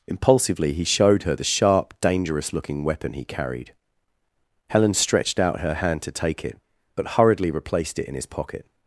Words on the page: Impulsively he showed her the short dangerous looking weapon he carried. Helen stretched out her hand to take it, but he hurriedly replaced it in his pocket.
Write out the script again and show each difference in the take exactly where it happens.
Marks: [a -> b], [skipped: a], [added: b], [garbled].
Impulsively he showed her the [short -> sharp] dangerous looking weapon he carried. Helen stretched out her hand to take it, but [skipped: he] hurriedly replaced it in his pocket.